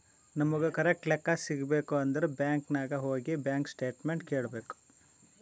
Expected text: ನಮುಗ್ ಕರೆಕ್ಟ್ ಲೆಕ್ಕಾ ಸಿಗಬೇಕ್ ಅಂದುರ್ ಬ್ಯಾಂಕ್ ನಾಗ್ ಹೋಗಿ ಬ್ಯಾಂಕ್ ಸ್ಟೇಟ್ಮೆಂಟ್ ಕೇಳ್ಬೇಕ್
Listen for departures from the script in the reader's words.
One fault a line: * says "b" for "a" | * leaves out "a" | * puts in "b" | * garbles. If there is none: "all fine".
all fine